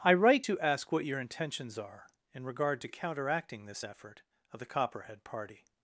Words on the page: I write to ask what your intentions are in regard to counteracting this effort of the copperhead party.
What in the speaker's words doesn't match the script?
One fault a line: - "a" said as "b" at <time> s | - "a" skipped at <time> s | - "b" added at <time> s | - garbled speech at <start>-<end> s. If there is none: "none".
none